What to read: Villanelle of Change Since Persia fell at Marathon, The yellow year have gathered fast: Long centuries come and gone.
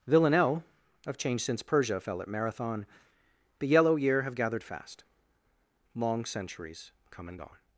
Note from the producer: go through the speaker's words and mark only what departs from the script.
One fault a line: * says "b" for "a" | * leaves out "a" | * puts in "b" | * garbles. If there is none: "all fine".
all fine